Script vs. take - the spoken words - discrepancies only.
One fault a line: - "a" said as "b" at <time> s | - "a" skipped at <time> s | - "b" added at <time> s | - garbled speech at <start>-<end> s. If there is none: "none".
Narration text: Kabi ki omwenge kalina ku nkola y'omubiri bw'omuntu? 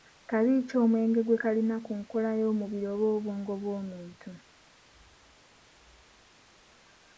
- "gwe" added at 1.2 s
- "oba obwongo" added at 2.9 s